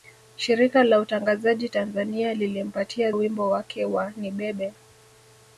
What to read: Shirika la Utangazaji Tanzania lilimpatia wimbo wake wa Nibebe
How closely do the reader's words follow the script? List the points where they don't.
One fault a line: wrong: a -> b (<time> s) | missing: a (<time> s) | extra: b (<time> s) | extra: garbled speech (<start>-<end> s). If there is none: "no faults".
no faults